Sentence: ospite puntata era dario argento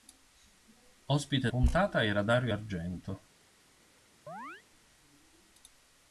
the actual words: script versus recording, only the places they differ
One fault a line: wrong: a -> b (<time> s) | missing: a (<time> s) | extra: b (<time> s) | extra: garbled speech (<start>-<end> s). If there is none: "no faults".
no faults